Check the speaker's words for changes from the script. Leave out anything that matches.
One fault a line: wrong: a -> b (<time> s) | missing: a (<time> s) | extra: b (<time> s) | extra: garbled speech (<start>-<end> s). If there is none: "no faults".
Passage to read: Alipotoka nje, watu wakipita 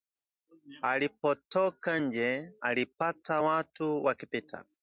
extra: alipata (2.6 s)